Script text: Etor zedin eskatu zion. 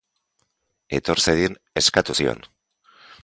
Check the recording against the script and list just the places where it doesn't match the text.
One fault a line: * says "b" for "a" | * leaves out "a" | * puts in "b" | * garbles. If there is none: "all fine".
all fine